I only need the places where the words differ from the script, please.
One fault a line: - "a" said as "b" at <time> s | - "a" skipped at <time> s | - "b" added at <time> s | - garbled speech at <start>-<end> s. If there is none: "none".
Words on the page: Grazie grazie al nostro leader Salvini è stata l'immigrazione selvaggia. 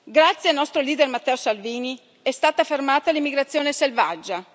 - "grazie" skipped at 0.5 s
- "Matteo" added at 1.1 s
- "fermata" added at 2.6 s